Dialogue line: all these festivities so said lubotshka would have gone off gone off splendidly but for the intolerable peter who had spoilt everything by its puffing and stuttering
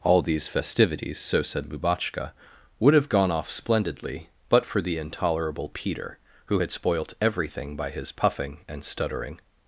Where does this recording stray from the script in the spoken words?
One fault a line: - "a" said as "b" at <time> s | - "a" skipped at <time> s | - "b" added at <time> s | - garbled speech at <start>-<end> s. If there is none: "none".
- "gone off" skipped at 3.5 s
- "its" said as "his" at 7.9 s